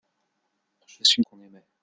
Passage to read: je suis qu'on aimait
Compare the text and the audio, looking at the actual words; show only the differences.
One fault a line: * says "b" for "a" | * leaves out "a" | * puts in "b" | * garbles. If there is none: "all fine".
all fine